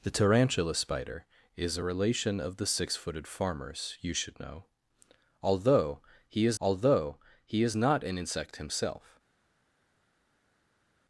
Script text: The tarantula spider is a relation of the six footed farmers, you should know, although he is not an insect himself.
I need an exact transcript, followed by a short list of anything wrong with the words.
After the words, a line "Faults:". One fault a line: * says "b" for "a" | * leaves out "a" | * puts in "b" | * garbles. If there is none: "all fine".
The tarantula spider is a relation of the six footed farmers, you should know, although he is although he is not an insect himself.
Faults:
* puts in "although he is"